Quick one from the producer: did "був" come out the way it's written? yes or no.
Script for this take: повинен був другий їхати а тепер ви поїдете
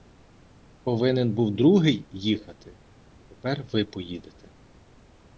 yes